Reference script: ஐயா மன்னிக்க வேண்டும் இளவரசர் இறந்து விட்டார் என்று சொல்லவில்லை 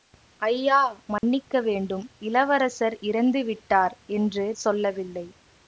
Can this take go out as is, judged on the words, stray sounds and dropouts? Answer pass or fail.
fail